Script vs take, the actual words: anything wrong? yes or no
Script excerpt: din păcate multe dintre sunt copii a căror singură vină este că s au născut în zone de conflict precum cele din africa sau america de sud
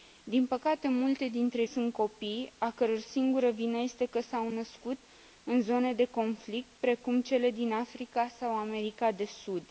no